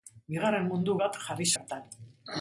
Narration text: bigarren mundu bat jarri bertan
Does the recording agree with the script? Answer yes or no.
yes